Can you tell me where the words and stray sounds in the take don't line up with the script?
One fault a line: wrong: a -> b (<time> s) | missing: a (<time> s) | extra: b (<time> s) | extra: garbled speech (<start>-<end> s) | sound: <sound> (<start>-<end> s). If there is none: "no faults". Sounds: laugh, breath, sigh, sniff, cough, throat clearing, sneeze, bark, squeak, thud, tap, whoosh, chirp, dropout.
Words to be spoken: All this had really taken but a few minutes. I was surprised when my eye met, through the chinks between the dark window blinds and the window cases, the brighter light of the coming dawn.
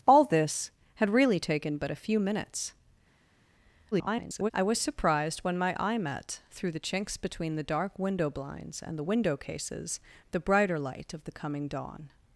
extra: garbled speech (3.9-4.5 s)